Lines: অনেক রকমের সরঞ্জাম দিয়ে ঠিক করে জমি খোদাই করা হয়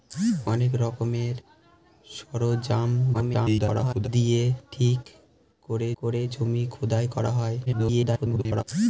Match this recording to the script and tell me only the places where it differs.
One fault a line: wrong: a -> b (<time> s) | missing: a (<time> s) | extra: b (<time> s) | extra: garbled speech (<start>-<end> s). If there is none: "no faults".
extra: garbled speech (3.1-4.1 s)
extra: করে (6.0 s)
extra: garbled speech (7.7-8.6 s)